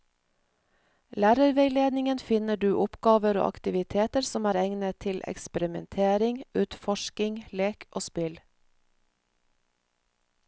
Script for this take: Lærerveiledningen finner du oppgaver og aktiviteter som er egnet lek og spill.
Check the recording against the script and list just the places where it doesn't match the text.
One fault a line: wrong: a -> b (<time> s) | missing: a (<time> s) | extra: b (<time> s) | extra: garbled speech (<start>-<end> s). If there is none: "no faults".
extra: til eksperimentering utforsking (5.0 s)